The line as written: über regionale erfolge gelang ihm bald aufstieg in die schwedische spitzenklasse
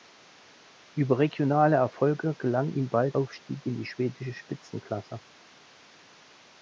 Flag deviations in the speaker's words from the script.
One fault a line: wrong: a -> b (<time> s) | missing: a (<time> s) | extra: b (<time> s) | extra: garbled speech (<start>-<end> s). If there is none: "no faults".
no faults